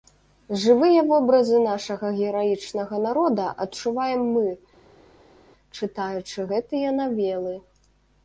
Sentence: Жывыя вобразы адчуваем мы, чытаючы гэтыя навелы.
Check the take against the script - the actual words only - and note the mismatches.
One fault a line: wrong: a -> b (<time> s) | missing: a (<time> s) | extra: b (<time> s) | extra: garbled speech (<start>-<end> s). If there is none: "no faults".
extra: нашага гераічнага народа (1.6 s)